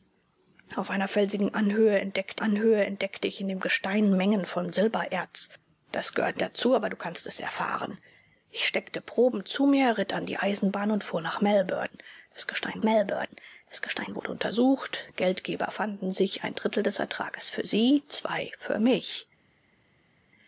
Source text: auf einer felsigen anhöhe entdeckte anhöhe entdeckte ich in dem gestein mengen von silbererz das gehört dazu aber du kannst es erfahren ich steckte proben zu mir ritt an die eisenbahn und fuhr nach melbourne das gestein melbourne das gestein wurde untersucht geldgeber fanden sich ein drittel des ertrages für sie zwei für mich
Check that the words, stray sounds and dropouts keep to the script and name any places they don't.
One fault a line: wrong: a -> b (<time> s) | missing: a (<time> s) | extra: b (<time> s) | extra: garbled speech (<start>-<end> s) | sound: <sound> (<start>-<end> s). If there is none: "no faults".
no faults